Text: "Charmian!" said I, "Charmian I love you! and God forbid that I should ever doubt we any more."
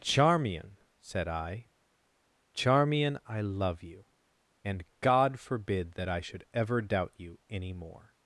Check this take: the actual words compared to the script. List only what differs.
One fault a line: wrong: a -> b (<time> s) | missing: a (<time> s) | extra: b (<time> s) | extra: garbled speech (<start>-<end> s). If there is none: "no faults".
wrong: we -> you (7.2 s)